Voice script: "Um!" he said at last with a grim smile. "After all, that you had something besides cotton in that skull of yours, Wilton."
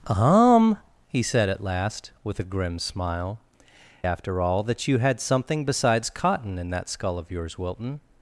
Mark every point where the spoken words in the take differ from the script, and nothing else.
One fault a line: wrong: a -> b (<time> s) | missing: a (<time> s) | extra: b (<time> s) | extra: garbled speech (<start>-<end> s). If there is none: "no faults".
no faults